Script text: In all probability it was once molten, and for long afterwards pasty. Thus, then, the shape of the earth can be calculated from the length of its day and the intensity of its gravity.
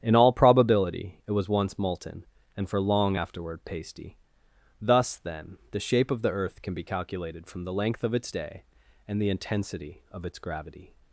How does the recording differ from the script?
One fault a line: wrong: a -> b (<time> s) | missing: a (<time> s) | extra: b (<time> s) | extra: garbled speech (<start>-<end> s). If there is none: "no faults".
wrong: afterwards -> afterward (3.1 s)